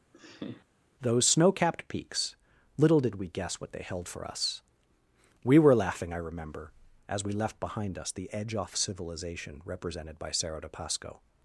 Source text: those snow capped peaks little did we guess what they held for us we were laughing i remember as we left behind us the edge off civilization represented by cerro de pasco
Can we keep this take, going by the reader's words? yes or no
yes